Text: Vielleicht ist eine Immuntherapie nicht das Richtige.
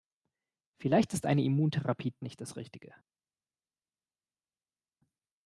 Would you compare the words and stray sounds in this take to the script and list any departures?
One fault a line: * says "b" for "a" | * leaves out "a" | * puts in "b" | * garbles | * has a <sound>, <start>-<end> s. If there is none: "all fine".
all fine